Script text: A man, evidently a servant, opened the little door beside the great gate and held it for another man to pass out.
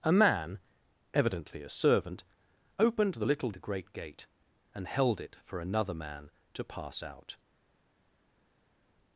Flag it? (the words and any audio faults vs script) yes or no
yes